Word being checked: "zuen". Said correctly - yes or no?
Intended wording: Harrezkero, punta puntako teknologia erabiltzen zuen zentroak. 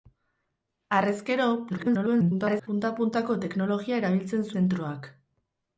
no